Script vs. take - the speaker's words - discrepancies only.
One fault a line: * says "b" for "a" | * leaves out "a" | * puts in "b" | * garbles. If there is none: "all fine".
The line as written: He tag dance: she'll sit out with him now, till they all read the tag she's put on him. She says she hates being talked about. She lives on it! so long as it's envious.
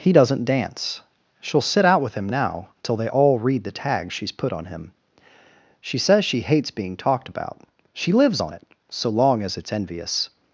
* says "doesn't" for "tag"